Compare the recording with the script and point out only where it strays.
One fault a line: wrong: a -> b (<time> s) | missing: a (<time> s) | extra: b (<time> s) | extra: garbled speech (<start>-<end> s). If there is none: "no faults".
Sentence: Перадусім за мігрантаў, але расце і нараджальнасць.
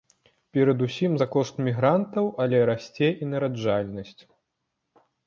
extra: кошт (1.3 s)